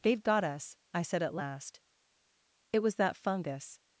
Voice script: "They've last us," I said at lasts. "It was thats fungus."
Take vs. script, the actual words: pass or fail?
fail